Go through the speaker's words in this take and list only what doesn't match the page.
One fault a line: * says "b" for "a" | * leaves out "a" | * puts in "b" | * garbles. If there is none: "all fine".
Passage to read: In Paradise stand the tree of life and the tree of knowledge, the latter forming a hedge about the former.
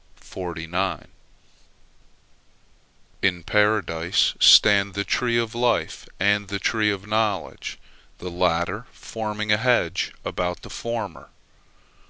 all fine